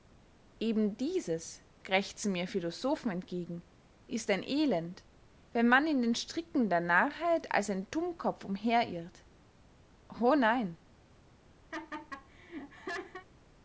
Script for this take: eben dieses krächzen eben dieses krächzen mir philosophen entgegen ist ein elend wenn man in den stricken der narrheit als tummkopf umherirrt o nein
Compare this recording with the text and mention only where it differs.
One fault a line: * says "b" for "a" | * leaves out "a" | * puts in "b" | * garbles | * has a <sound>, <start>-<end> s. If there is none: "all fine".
* leaves out "eben dieses krächzen"
* puts in "ein"
* has a laugh, 11.7-13.3 s